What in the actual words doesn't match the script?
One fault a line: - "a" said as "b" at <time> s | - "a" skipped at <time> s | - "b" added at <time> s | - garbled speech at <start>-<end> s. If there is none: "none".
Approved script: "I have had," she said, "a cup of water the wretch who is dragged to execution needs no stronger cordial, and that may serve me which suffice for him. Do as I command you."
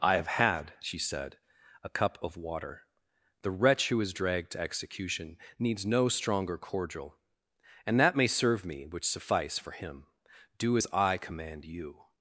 none